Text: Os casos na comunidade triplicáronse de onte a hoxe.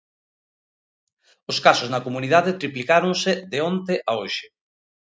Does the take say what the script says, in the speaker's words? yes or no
yes